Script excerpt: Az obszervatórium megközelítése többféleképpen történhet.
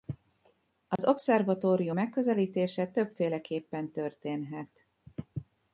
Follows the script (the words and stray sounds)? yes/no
no